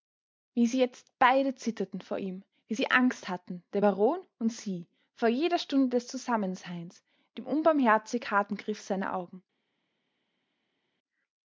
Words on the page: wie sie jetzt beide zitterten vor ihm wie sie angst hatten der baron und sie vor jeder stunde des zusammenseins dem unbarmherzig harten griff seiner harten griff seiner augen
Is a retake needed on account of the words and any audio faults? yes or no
yes